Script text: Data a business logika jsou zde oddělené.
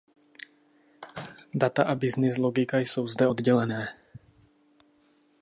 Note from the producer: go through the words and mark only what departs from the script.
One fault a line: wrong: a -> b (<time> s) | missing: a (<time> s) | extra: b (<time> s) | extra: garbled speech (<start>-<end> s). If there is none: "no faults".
no faults